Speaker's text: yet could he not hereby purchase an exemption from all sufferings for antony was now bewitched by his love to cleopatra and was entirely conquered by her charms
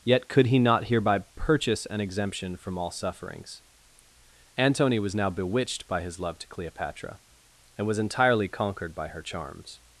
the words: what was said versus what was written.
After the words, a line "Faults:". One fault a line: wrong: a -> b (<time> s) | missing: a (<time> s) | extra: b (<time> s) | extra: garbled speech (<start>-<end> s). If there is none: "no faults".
yet could he not hereby purchase an exemption from all sufferings antony was now bewitched by his love to cleopatra and was entirely conquered by her charms
Faults:
missing: for (3.6 s)